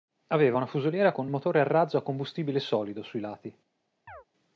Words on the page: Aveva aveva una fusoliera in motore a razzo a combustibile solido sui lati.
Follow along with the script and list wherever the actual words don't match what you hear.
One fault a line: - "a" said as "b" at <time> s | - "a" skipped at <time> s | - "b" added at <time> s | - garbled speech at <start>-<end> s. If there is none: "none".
- "aveva" skipped at 0.6 s
- "in" said as "con" at 1.1 s